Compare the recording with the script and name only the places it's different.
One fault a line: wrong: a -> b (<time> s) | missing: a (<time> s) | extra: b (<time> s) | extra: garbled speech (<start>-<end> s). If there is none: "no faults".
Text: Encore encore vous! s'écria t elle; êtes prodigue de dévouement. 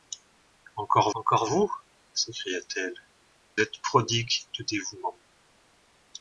no faults